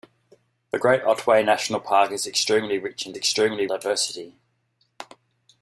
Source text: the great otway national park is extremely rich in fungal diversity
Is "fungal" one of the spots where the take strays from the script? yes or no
yes